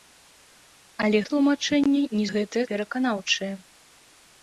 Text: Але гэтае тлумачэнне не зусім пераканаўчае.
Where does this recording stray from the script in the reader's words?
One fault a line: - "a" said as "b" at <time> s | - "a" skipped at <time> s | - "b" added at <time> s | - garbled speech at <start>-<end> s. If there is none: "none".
- "гэтае" skipped at 1.2 s
- "зусім" said as "гэтае" at 2.3 s